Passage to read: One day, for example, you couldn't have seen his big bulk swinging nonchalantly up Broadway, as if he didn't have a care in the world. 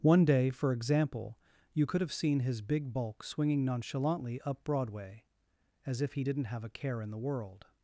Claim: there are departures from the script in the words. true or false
true